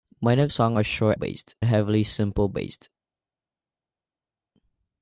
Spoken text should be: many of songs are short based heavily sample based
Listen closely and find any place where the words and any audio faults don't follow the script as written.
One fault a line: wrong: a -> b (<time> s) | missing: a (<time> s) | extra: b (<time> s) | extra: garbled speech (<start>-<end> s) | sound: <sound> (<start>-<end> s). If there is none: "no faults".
no faults